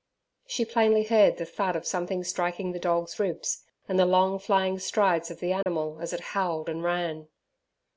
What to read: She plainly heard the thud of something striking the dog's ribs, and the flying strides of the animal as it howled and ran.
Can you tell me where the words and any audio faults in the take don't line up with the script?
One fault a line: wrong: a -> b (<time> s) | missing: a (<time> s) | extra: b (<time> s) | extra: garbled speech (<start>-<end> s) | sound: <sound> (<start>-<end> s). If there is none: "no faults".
extra: long (4.1 s)
sound: dropout (5.6-5.7 s)